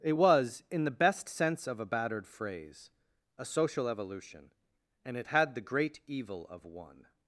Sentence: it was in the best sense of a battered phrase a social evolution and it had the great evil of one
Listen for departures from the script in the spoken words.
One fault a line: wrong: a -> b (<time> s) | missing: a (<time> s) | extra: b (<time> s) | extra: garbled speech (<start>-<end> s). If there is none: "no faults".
no faults